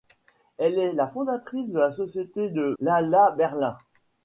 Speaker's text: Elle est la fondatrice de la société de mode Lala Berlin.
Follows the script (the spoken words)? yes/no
no